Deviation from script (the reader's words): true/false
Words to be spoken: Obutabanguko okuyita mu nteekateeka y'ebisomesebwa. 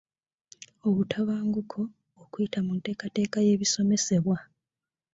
false